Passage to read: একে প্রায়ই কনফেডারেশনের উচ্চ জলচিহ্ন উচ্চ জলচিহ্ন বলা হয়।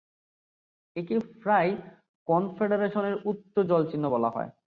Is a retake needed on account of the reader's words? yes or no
yes